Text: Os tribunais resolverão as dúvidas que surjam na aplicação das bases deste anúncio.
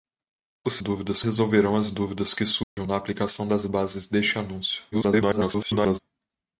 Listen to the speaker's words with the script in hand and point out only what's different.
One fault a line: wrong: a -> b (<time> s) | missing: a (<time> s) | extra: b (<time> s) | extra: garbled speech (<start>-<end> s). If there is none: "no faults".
wrong: tribunais -> dúvidas (0.8 s)
extra: garbled speech (4.9-6.0 s)